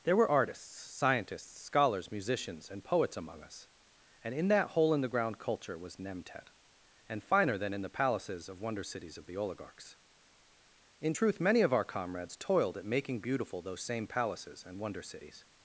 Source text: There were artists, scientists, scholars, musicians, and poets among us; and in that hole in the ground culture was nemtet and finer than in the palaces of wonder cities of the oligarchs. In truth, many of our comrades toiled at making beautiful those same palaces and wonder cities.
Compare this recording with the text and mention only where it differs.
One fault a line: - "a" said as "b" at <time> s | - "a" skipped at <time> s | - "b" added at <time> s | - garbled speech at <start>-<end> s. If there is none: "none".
none